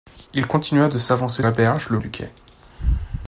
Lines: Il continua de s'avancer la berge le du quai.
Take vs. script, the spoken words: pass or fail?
pass